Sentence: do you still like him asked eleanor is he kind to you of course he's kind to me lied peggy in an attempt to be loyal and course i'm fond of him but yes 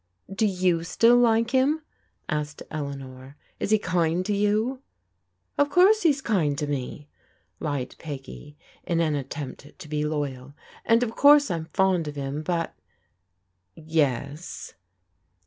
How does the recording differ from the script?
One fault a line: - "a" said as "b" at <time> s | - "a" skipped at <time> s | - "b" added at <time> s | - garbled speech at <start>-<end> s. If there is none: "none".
- "of" added at 11.0 s